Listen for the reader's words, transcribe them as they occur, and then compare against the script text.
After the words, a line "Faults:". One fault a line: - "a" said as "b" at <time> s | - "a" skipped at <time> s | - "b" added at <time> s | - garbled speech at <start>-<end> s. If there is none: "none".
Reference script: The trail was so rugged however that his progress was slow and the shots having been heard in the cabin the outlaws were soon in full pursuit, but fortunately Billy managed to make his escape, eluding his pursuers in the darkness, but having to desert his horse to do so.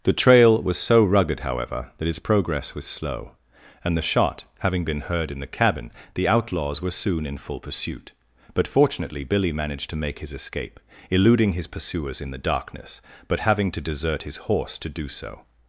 The trail was so rugged however that his progress was slow and the shot having been heard in the cabin the outlaws were soon in full pursuit, but fortunately Billy managed to make his escape, eluding his pursuers in the darkness, but having to desert his horse to do so.
Faults:
- "shots" said as "shot" at 4.0 s